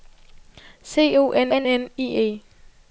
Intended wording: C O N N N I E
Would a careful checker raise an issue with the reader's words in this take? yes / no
no